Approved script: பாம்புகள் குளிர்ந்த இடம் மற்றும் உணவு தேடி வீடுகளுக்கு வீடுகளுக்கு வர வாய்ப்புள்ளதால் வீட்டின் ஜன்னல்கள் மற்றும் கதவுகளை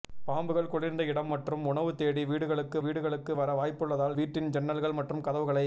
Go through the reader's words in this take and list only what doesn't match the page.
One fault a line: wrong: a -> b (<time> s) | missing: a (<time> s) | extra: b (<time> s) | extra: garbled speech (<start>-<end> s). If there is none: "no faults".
no faults